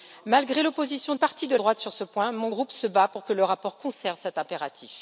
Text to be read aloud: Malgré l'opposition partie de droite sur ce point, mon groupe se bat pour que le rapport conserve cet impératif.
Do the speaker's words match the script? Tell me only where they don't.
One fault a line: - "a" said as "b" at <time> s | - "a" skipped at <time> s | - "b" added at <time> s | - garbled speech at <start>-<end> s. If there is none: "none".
none